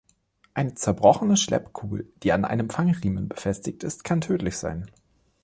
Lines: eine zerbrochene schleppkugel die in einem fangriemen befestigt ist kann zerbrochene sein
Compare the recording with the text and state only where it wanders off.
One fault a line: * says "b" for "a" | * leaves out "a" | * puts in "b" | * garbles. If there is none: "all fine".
* says "an" for "in"
* says "tödlich" for "zerbrochene"